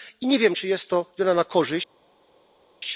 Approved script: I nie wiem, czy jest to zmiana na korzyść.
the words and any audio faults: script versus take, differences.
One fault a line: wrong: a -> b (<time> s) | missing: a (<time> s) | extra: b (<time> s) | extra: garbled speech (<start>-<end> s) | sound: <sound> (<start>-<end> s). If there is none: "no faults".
no faults